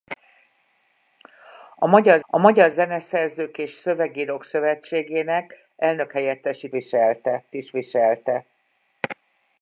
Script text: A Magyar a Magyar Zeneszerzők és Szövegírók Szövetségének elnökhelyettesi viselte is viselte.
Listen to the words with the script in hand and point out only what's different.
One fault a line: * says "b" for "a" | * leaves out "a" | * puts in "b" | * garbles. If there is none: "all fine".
all fine